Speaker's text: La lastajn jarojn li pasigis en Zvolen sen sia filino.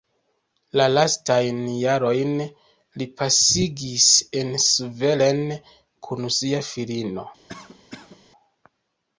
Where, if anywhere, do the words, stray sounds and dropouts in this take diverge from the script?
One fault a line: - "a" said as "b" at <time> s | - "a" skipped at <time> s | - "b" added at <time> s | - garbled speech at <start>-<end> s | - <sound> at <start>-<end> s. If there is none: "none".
- "sen" said as "kun" at 6.1 s
- cough at 7.5-8.2 s